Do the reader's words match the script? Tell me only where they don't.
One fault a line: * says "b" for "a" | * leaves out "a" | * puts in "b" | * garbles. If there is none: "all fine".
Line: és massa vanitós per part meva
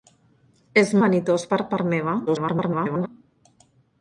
* leaves out "massa"
* garbles